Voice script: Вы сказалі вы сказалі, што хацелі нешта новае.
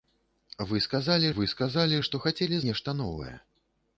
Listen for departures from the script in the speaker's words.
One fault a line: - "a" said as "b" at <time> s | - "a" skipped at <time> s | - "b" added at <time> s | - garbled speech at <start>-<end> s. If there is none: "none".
none